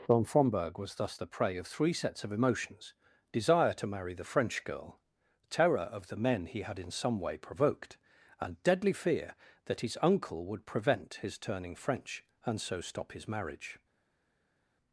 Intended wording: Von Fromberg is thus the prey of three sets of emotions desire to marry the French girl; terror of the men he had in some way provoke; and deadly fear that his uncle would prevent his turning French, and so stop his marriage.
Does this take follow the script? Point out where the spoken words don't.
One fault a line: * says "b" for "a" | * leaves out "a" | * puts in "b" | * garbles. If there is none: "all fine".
* says "was" for "is"
* says "provoked" for "provoke"